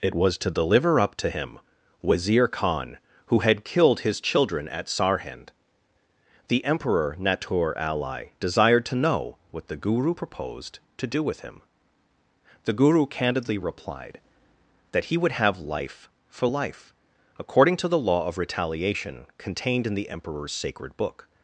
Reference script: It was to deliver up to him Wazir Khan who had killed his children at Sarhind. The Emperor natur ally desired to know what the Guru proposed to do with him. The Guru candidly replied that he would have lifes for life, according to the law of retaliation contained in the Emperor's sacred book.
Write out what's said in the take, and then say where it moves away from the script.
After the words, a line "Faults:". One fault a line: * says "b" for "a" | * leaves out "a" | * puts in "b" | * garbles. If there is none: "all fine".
It was to deliver up to him Wazir Khan who had killed his children at Sarhind. The Emperor natur ally desired to know what the Guru proposed to do with him. The Guru candidly replied that he would have life for life, according to the law of retaliation contained in the Emperor's sacred book.
Faults:
* says "life" for "lifes"